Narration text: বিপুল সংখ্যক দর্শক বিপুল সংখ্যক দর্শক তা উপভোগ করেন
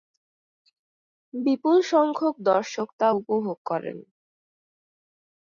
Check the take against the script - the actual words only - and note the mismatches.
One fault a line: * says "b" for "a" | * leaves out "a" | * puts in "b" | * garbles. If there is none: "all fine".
* leaves out "বিপুল সংখ্যক দর্শক"